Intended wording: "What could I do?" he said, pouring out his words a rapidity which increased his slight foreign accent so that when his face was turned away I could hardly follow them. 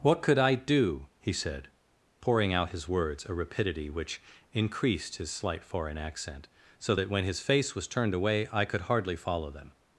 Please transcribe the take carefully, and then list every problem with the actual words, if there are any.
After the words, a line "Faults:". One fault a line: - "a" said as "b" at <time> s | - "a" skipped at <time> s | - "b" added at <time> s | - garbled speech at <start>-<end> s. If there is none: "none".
"What could I do?" he said, pouring out his words a rapidity which increased his slight foreign accent so that when his face was turned away I could hardly follow them.
Faults:
none